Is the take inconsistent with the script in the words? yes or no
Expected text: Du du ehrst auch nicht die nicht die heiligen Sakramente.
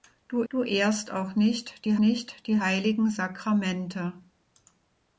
no